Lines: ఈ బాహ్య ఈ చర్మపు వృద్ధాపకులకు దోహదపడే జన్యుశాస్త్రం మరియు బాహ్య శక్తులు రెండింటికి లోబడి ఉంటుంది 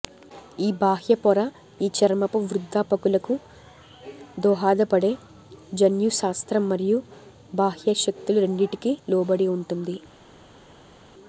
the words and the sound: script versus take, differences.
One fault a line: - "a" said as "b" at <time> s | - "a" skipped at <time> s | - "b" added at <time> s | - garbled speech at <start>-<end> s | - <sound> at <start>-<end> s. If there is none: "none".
- "పొర" added at 1.1 s